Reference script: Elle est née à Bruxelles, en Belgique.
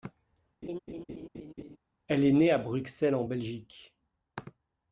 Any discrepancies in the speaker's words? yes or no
no